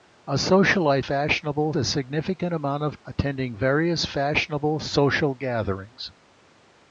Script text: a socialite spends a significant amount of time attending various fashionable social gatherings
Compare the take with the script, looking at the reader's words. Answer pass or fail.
fail